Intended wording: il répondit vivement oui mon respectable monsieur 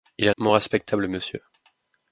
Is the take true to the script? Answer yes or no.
no